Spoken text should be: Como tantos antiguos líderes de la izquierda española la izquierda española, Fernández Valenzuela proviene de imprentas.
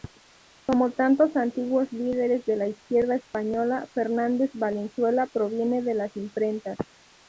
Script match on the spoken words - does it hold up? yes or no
no